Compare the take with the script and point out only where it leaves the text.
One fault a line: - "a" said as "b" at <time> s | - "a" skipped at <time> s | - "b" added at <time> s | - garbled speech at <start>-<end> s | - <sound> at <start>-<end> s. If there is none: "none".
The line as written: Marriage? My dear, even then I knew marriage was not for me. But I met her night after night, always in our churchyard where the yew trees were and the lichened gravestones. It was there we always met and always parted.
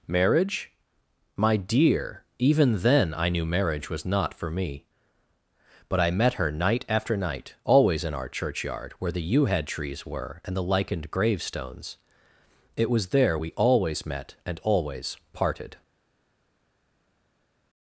- "head" added at 9.5 s